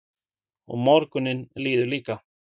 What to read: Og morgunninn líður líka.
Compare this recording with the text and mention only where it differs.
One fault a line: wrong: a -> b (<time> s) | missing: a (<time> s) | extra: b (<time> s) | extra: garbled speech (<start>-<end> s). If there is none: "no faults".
no faults